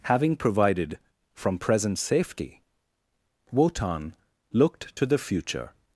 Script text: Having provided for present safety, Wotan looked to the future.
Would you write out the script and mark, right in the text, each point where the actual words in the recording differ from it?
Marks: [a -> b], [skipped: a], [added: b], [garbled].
Having provided [for -> from] present safety, Wotan looked to the future.